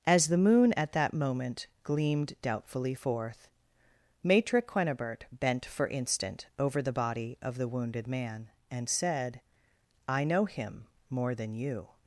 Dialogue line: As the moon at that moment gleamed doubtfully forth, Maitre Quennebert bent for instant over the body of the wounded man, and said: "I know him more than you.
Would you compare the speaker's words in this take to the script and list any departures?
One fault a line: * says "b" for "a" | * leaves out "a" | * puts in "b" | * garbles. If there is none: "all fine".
all fine